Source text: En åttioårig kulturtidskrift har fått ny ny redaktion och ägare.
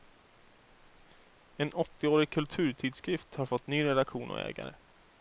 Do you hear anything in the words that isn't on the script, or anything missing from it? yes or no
yes